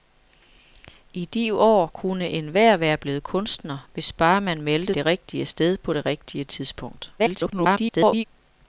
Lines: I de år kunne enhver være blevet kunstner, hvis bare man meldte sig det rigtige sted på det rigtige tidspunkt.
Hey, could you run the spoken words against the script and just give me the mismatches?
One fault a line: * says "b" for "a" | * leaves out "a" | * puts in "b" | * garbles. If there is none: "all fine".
* leaves out "sig"
* garbles